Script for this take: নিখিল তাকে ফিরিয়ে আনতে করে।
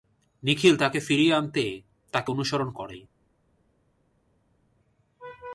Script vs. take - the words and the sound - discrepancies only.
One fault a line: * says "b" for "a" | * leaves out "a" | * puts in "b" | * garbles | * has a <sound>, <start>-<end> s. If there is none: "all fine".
* puts in "তাকে অনুসরণ"